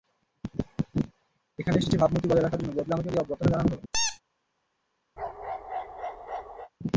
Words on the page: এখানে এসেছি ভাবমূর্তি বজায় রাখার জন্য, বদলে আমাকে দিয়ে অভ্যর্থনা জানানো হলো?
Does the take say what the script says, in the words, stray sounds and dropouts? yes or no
no